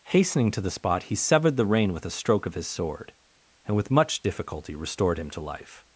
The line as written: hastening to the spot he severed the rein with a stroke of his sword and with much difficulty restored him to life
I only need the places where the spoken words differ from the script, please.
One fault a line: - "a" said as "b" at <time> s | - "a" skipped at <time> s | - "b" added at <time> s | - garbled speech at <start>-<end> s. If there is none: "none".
none